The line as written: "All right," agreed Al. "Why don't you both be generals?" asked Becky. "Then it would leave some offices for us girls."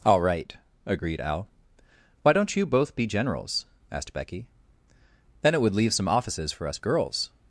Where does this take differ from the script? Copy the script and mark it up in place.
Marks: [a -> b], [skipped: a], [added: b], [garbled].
"All right," agreed Al. "Why don't you both be generals?" asked Becky. "Then it would leave some offices for us girls."